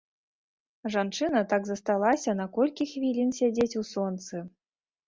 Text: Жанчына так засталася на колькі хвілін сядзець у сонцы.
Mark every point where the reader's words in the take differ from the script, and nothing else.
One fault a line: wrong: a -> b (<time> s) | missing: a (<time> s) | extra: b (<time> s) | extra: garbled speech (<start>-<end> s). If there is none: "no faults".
no faults